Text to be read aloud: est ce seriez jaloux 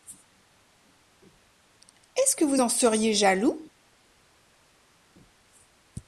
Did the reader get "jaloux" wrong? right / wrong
right